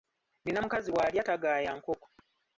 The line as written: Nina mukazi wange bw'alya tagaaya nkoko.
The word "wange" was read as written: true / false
false